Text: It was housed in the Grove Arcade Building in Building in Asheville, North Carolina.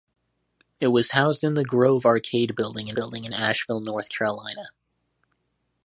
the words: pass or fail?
pass